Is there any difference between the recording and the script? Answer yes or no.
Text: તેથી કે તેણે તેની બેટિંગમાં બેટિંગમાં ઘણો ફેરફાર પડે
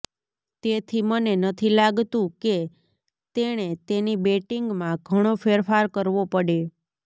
yes